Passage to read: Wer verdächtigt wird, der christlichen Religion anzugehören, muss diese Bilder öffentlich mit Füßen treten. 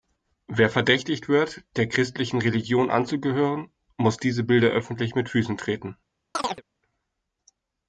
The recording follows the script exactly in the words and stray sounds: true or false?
false